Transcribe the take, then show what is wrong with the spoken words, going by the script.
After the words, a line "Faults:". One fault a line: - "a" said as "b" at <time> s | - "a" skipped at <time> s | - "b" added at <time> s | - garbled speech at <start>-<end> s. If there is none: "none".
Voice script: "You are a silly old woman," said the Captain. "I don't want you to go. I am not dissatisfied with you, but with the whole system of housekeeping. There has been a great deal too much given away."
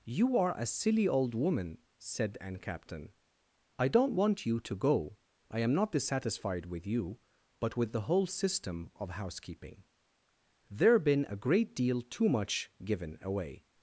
"You are a silly old woman," said an Captain. "I don't want you to go. I am not dissatisfied with you, but with the whole system of housekeeping. There been a great deal too much given away."
Faults:
- "the" said as "an" at 2.4 s
- "has" skipped at 11.0 s